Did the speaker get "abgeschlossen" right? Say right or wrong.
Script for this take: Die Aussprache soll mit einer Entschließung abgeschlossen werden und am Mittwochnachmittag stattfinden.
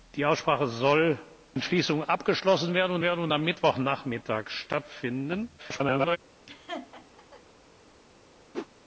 wrong